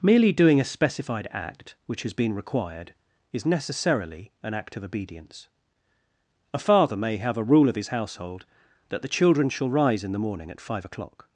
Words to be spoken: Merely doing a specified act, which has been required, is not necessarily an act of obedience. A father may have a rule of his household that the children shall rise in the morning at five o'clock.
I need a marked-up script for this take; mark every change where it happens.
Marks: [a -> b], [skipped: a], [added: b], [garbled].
Merely doing a specified act, which has been required, is [skipped: not] necessarily an act of obedience. A father may have a rule of his household that the children shall rise in the morning at five o'clock.